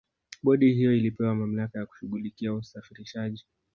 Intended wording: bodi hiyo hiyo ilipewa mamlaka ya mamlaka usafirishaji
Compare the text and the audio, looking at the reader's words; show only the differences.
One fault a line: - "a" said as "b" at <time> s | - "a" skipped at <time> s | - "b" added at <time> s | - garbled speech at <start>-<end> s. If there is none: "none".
- "hiyo" skipped at 0.9 s
- "mamlaka" said as "kushughulikia" at 1.8 s